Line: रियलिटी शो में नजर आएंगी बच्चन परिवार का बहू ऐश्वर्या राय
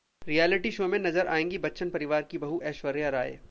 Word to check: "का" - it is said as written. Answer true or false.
false